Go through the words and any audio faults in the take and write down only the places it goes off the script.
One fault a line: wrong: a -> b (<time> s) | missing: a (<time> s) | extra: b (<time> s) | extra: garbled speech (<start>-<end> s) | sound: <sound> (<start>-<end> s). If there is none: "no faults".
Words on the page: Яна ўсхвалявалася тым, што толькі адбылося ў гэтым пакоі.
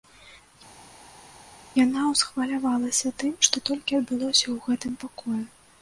no faults